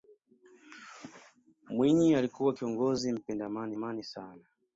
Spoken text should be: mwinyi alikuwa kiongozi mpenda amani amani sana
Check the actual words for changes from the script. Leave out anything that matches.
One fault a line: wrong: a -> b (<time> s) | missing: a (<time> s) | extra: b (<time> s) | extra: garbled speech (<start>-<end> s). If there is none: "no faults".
no faults